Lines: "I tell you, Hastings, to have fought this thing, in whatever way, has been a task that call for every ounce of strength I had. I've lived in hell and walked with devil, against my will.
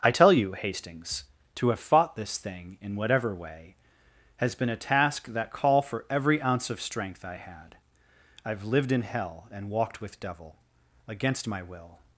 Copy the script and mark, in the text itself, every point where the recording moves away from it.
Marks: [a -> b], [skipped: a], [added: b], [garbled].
"I tell you, Hastings, to have fought this thing, in whatever way, has been a task that call for every ounce of strength I had. I've lived in hell and walked with devil, against my will.